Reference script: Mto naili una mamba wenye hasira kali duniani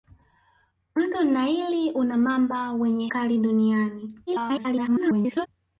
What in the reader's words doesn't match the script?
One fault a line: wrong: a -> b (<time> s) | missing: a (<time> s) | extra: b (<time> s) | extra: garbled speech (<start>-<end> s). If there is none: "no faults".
missing: hasira (3.1 s)
extra: garbled speech (4.3-5.5 s)